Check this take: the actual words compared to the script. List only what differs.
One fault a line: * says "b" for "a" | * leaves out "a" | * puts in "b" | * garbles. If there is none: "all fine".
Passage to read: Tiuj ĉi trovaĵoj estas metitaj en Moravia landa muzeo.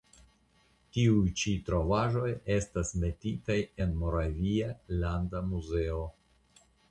all fine